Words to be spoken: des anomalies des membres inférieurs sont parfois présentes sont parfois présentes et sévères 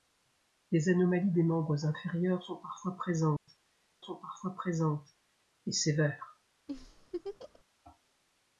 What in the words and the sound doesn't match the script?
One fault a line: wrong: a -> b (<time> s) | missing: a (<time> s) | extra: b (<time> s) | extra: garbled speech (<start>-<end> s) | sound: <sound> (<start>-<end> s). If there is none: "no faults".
sound: dropout (3.4-3.5 s)
sound: laugh (6.7-7.6 s)